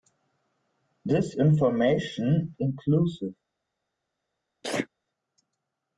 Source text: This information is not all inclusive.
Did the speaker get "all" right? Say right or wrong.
wrong